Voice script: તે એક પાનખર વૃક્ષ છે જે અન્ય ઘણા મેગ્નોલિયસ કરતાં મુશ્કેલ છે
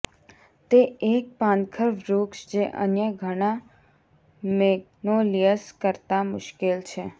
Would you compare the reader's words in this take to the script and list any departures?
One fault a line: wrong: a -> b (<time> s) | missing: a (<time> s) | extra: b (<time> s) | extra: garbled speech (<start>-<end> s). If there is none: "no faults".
missing: છે (2.5 s)